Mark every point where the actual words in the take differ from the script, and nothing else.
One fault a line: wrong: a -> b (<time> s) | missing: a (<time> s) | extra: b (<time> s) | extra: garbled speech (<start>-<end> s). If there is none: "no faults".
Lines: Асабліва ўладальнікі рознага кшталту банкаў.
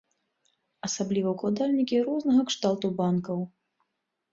no faults